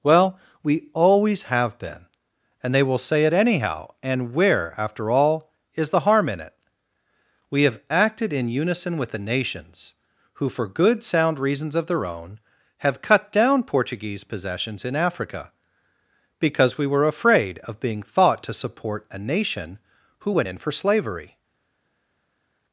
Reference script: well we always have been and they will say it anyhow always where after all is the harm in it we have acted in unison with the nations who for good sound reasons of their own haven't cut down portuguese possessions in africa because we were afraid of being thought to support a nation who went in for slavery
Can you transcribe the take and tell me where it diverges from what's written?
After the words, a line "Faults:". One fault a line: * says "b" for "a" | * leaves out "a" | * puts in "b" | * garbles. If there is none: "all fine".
well we always have been and they will say it anyhow and where after all is the harm in it we have acted in unison with the nations who for good sound reasons of their own have cut down portuguese possessions in africa because we were afraid of being thought to support a nation who went in for slavery
Faults:
* says "and" for "always"
* says "have" for "haven't"